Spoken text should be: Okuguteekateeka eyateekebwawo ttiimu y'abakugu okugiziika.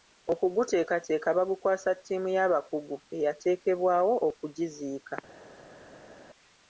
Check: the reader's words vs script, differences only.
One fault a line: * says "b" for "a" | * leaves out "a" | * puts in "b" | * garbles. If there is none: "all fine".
* says "bagukwasa" for "eyateekebwawo"
* puts in "eyateekebwawo"